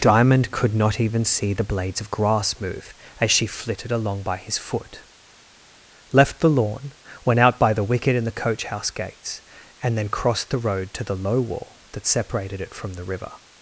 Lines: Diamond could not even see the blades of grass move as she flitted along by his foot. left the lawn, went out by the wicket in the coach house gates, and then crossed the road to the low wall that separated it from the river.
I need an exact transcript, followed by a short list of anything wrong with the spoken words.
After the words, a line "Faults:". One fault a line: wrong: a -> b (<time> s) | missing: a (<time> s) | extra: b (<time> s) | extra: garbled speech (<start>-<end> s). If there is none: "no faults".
Diamond could not even see the blades of grass move as she flitted along by his foot. left the lawn, went out by the wicket in the coach house gates, and then crossed the road to the low wall that separated it from the river.
Faults:
no faults